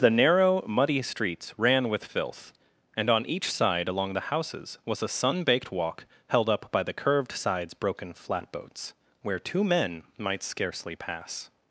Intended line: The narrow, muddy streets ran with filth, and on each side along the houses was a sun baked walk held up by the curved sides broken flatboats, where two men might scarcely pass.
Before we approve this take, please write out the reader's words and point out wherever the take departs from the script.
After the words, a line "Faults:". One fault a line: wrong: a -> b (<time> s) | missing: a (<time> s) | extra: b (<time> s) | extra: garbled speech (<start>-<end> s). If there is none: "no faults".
The narrow, muddy streets ran with filth, and on each side along the houses was a sun baked walk held up by the curved sides broken flatboats, where two men might scarcely pass.
Faults:
no faults